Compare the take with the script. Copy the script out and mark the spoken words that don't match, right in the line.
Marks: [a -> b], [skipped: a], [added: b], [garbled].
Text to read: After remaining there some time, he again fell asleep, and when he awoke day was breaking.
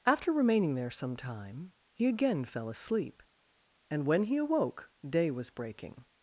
After remaining there some time, he again fell asleep, and when he awoke day was breaking.